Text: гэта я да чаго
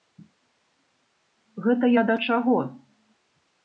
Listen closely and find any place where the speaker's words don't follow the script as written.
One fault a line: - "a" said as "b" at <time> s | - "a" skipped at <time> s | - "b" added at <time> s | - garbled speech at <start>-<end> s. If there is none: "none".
none